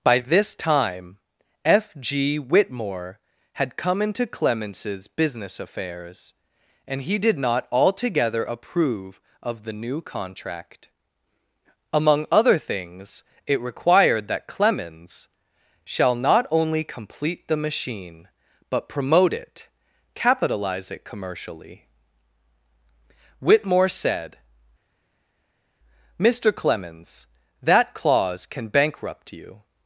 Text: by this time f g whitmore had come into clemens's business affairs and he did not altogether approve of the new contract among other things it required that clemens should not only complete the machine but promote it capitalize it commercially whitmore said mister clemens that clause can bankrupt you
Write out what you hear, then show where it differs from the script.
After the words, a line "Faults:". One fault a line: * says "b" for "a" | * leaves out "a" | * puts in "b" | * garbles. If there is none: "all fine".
by this time f g whitmore had come into clemens's business affairs and he did not altogether approve of the new contract among other things it required that clemens shall not only complete the machine but promote it capitalize it commercially whitmore said mister clemens that clause can bankrupt you
Faults:
* says "shall" for "should"